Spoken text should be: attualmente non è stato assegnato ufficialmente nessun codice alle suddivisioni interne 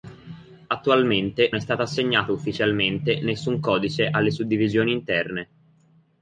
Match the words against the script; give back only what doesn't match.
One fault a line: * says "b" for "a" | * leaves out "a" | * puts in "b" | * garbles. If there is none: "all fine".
* leaves out "non"